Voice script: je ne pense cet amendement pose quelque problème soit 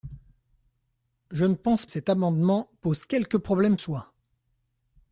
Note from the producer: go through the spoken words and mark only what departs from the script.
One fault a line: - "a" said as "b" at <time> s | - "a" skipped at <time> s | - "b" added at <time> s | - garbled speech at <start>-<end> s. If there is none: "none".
none